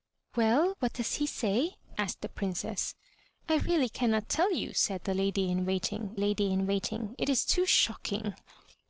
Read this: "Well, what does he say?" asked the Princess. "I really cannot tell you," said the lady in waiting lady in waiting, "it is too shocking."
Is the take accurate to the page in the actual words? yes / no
yes